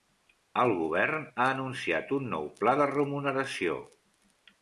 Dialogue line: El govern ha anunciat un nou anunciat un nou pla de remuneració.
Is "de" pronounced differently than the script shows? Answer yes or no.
no